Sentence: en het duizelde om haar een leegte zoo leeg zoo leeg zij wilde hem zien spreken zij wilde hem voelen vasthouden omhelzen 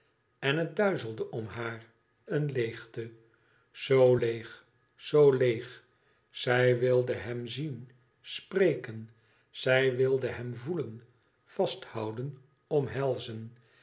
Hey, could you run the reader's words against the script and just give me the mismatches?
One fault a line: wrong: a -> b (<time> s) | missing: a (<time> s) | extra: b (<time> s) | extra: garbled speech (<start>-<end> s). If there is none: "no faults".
no faults